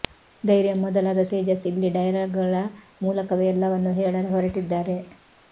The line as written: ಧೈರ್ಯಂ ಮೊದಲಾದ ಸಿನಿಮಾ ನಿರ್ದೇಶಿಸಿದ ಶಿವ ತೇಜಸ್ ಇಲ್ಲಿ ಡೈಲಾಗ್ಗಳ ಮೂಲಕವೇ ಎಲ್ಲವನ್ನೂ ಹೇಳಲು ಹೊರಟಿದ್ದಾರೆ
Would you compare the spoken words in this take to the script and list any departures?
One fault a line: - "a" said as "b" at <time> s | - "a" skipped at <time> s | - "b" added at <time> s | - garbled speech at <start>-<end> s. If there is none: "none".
- "ಸಿನಿಮಾ ನಿರ್ದೇಶಿಸಿದ ಶಿವ" skipped at 1.2 s